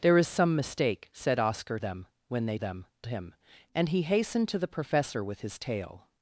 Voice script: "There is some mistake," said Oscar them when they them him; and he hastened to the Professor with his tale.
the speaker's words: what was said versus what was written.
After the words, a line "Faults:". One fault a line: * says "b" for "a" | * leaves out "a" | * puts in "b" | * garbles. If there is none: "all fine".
"There is some mistake," said Oscar them when they them him; and he hastened to the Professor with his tale.
Faults:
all fine